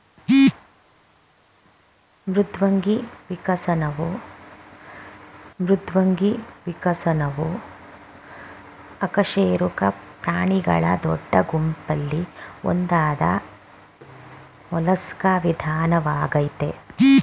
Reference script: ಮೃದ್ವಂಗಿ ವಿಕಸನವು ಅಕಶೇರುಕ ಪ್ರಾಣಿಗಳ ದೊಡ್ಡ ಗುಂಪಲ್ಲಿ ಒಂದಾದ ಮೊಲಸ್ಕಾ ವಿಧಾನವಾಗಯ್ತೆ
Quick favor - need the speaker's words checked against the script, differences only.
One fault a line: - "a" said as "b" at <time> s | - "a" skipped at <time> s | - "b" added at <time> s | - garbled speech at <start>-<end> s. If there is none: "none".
- "ಮೃದ್ವಂಗಿ ವಿಕಸನವು" added at 5.6 s